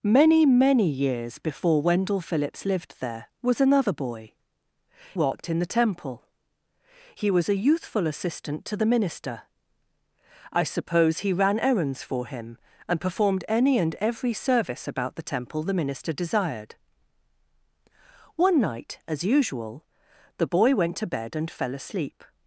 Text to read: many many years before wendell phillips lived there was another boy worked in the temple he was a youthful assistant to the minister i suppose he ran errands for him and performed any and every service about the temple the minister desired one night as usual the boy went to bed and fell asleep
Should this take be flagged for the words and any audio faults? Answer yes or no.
no